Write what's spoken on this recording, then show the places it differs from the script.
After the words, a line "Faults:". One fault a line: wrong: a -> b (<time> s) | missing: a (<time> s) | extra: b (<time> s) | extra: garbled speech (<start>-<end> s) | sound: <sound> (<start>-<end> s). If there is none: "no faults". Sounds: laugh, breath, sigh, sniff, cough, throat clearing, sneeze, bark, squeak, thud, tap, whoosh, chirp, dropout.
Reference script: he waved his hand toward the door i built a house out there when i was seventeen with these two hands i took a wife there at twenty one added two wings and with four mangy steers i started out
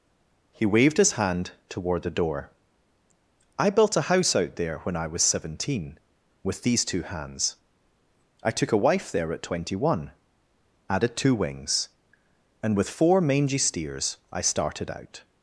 he waved his hand toward the door i built a house out there when i was seventeen with these two hands i took a wife there at twenty one added two wings and with four mangy steers i started out
Faults:
no faults